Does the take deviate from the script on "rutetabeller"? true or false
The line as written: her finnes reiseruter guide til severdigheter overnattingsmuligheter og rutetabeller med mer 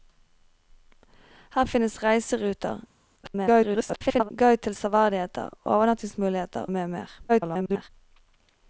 true